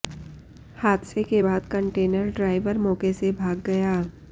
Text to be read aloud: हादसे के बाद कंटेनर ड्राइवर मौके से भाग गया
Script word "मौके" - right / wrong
right